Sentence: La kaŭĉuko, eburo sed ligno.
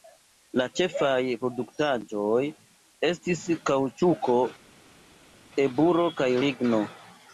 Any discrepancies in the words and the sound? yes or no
yes